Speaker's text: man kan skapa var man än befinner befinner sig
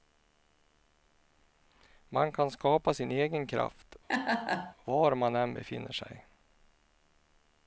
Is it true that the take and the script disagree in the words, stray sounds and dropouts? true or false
true